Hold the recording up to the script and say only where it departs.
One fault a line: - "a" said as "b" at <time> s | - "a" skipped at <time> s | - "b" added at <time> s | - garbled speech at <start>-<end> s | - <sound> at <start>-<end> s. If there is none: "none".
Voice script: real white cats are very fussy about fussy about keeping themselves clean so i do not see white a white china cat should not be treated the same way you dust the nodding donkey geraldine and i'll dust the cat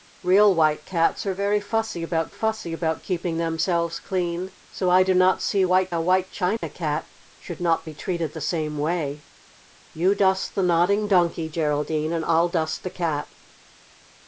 - dropout at 6.6-6.6 s